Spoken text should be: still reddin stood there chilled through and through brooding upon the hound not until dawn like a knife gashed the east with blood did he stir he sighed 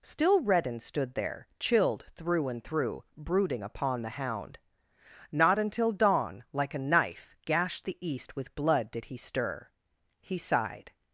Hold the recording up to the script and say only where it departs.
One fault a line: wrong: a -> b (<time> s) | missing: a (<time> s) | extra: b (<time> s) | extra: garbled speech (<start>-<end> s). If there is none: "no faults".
no faults